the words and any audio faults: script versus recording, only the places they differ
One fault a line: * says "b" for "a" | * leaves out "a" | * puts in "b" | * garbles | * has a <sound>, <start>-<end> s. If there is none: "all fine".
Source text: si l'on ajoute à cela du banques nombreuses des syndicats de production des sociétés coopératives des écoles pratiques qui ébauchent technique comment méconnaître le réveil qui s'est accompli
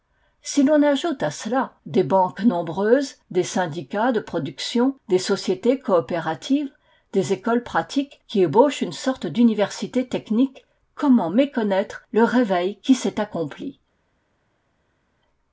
* says "des" for "du"
* puts in "une sorte d'université"